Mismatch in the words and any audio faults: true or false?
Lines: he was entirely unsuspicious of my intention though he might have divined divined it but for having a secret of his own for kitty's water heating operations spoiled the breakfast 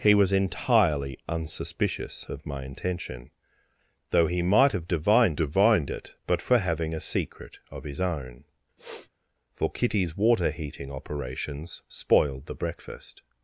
true